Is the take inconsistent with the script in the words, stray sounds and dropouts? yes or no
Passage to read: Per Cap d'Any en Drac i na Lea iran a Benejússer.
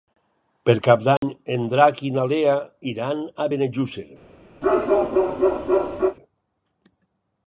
yes